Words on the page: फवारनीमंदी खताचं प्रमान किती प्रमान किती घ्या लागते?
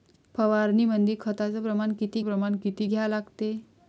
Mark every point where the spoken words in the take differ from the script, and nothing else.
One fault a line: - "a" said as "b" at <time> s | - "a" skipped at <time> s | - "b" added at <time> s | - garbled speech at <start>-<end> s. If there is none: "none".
none